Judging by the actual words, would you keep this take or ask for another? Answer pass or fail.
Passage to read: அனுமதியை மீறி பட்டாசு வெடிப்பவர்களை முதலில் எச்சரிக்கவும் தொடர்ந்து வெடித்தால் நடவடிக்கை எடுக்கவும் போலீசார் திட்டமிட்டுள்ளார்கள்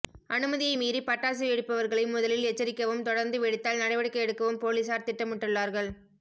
pass